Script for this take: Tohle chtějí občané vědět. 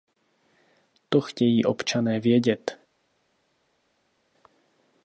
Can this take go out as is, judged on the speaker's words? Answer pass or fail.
fail